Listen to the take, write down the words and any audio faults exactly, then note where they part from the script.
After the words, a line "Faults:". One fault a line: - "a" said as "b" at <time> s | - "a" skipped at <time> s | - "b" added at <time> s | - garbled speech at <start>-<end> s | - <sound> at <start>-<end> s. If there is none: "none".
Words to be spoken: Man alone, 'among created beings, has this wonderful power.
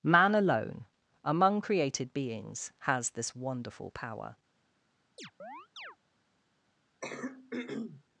Man alone, 'among created beings, has this wonderful power.
Faults:
- chirp at 5.2-6.0 s
- throat clearing at 7.0-8.0 s